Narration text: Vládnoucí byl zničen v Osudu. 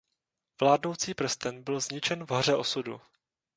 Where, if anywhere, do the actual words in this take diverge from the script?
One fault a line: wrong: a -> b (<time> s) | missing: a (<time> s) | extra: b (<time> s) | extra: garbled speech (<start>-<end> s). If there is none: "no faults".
extra: prsten (1.1 s)
extra: Hoře (2.3 s)